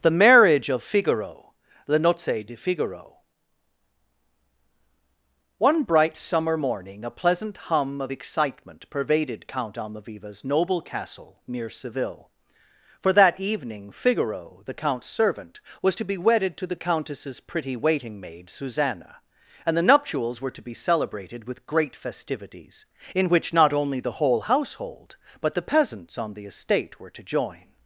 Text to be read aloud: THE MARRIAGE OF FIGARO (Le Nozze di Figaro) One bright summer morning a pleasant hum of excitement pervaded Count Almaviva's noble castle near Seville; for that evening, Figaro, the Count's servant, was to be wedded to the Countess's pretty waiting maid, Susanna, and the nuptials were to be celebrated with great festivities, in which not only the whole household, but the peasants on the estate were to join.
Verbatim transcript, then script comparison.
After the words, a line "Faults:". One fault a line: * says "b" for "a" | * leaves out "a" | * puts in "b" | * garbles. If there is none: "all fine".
THE MARRIAGE OF FIGARO (Le Nozze di Figaro) One bright summer morning a pleasant hum of excitement pervaded Count Almaviva's noble castle near Seville; for that evening, Figaro, the Count's servant, was to be wedded to the Countess's pretty waiting maid, Susanna, and the nuptials were to be celebrated with great festivities, in which not only the whole household, but the peasants on the estate were to join.
Faults:
all fine